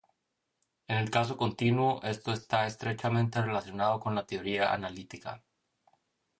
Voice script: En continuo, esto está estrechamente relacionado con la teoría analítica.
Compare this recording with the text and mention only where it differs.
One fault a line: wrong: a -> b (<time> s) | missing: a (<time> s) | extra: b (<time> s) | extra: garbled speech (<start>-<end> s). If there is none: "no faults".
extra: el caso (1.0 s)